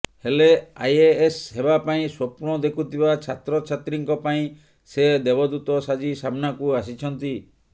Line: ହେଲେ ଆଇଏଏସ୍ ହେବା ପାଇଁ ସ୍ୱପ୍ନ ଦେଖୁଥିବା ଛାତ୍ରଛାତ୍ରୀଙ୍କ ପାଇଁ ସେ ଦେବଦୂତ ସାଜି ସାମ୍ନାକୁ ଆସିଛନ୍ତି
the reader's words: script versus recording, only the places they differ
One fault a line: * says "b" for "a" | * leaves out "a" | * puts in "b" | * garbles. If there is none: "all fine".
all fine